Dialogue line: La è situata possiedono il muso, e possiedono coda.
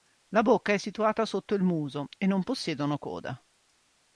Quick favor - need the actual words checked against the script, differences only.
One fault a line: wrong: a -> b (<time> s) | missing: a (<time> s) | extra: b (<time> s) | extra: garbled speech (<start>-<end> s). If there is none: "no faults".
extra: bocca (0.4 s)
wrong: possiedono -> sotto (1.3 s)
extra: non (2.2 s)